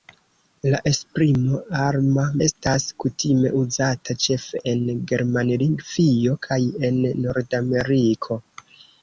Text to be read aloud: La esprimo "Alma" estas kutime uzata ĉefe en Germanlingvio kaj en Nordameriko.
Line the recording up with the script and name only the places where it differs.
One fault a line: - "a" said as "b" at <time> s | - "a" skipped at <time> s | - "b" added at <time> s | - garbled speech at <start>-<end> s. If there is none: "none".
none